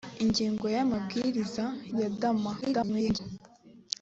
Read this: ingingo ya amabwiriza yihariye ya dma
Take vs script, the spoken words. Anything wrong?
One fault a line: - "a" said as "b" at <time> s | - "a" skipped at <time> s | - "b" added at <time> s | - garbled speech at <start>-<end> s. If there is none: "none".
- "yihariye" skipped at 1.6 s
- garbled speech at 2.6-3.2 s